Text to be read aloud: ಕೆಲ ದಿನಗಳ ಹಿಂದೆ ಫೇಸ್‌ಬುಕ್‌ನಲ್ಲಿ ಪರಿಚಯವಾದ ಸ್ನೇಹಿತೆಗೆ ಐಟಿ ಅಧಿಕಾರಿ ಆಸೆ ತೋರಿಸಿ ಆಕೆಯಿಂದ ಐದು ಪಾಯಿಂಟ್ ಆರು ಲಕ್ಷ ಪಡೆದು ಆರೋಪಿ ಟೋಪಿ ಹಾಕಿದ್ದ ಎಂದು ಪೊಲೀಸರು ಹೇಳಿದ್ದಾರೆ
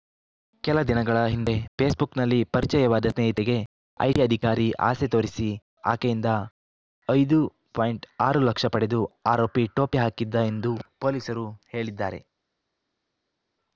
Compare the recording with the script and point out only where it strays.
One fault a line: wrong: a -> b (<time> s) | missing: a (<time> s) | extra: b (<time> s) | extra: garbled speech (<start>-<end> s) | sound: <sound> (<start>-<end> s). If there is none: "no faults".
no faults